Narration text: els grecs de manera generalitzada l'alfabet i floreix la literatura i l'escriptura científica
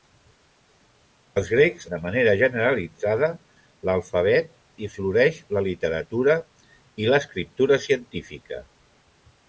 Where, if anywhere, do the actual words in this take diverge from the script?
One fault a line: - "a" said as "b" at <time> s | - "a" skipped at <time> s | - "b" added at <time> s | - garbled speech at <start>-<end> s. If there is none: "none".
none